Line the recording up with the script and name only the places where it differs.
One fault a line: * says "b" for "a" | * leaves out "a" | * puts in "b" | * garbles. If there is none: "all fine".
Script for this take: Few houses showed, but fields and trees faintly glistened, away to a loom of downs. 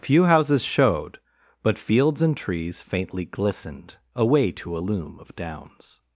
all fine